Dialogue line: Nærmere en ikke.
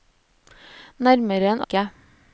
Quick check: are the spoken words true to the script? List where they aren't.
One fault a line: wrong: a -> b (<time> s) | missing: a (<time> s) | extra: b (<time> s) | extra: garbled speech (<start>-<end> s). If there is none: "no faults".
no faults